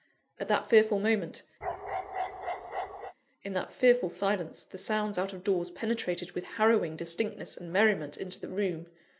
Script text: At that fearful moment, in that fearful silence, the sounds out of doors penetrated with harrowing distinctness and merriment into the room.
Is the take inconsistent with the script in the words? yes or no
no